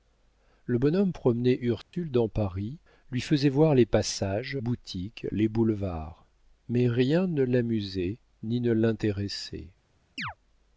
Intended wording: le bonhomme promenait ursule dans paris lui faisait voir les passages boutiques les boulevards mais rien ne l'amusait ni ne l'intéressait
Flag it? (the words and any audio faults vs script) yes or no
yes